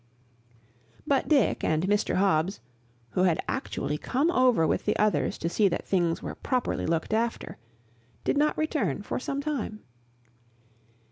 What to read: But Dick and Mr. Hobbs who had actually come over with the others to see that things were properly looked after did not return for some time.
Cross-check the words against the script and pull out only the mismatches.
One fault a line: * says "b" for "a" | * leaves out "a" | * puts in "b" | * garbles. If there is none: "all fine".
all fine